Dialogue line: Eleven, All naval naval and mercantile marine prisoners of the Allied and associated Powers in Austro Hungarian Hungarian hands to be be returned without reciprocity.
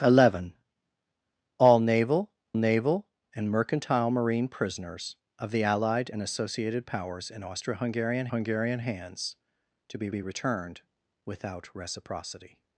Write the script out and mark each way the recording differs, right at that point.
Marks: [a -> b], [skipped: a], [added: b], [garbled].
Eleven, All naval naval and mercantile marine prisoners of the Allied and associated Powers in Austro Hungarian Hungarian hands to be be returned without reciprocity.